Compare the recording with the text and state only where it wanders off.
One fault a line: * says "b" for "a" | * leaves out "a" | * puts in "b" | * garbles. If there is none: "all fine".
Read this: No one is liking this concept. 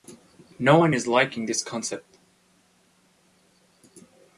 all fine